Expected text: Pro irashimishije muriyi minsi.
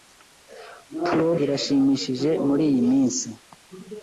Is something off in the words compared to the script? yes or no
no